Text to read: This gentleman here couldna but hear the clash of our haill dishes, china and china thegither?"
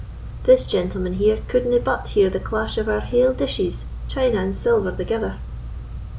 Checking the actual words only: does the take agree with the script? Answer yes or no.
no